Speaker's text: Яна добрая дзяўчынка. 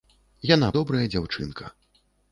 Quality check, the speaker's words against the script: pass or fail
pass